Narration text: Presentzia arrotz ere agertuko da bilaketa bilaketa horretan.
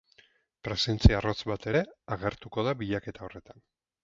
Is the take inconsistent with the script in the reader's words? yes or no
yes